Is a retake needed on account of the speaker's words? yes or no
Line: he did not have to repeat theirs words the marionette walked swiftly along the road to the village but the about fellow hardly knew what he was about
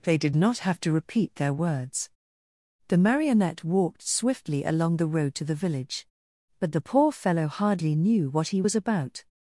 yes